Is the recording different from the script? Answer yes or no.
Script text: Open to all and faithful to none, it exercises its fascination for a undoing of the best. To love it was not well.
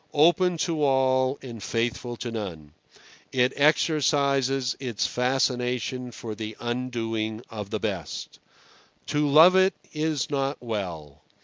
yes